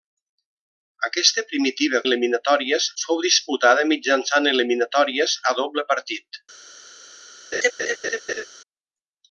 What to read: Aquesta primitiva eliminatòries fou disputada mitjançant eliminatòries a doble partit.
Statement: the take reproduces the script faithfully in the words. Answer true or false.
true